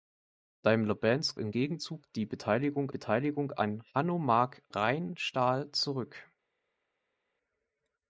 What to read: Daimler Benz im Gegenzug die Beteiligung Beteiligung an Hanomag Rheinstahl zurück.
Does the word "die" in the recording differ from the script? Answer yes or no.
no